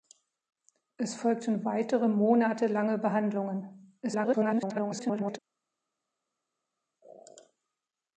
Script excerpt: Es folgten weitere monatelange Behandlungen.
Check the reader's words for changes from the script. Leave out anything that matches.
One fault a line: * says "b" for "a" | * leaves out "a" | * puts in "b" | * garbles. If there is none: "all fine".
* garbles